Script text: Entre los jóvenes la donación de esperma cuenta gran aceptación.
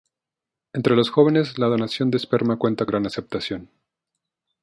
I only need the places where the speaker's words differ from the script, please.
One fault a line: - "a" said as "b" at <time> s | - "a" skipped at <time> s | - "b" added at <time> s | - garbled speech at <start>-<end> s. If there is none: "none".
none